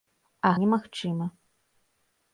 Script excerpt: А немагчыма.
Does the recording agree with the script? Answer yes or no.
yes